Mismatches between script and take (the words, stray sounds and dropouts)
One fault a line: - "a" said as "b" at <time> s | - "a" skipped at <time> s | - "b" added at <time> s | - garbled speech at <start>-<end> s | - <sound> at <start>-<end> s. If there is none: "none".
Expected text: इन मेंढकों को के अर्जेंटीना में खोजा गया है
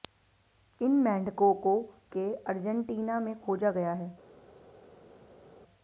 none